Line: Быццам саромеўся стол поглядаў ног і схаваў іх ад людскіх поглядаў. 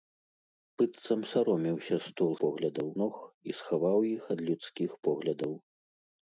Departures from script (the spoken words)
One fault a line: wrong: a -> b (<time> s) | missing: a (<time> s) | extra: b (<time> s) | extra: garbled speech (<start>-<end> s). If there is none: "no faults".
no faults